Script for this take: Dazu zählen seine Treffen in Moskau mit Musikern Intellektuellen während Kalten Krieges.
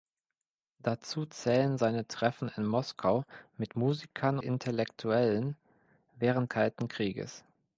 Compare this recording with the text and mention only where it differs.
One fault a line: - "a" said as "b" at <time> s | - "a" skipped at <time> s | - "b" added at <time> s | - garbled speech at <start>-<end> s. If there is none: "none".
none